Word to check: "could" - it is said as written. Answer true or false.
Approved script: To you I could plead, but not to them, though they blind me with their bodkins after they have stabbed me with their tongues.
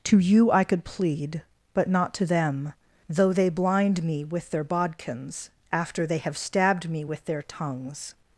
true